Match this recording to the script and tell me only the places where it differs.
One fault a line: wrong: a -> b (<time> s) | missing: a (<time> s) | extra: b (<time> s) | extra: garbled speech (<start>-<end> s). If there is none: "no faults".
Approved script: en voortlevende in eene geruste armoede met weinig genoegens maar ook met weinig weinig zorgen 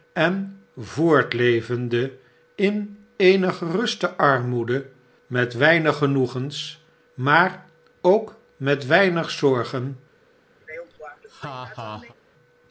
missing: weinig (9.3 s)